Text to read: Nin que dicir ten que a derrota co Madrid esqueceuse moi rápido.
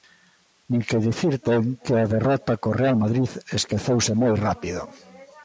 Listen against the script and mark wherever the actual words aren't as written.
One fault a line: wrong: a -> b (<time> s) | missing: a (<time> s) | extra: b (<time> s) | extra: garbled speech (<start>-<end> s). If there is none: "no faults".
extra: Real (2.8 s)